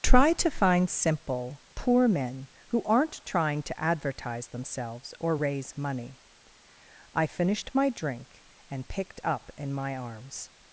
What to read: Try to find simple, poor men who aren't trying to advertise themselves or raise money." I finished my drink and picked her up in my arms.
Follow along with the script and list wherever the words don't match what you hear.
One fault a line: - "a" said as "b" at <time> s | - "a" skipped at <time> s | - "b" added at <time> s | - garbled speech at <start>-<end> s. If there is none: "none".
- "her" skipped at 9.2 s